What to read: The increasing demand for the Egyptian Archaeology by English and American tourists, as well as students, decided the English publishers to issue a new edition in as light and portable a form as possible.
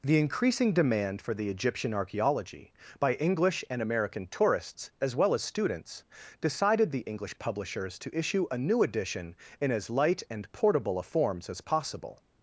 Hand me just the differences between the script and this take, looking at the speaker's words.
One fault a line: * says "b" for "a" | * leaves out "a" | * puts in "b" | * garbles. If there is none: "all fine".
* says "forms" for "form"